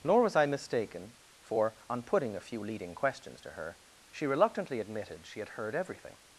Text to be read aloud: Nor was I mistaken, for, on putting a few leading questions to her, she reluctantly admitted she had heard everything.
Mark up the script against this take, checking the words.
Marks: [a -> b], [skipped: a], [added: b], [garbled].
Nor was I mistaken, for, on putting a few leading questions to her, she reluctantly admitted she had heard everything.